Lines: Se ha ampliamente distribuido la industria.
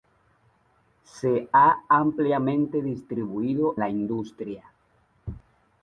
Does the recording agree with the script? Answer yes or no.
yes